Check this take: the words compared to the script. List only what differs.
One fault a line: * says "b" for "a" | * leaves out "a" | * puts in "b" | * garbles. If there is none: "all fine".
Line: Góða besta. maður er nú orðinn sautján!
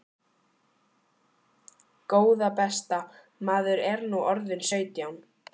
all fine